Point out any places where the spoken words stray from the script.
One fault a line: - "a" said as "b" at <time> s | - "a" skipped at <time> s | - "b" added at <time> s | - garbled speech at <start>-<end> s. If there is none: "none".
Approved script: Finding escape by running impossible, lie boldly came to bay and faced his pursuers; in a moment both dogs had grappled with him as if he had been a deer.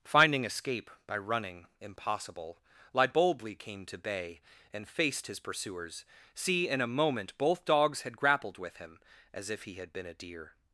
- "see" added at 6.3 s